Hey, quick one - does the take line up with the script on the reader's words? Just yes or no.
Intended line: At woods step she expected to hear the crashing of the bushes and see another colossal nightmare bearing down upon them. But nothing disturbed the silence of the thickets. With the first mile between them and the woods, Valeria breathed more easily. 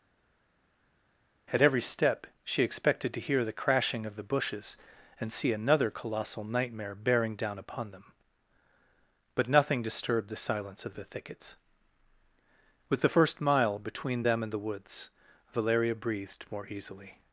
no